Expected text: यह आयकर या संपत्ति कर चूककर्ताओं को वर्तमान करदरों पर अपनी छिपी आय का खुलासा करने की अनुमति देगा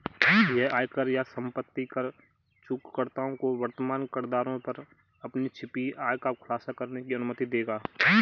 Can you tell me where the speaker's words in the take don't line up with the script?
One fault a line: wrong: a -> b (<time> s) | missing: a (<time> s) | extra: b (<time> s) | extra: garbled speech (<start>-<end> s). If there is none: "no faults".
no faults